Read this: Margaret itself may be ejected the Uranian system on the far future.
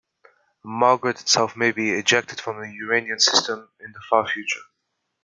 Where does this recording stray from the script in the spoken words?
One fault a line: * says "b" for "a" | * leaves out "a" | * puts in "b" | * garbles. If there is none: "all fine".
* puts in "from"
* says "in" for "on"